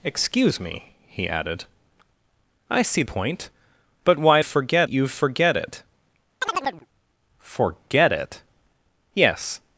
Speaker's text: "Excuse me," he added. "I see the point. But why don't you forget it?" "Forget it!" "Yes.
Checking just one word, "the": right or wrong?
wrong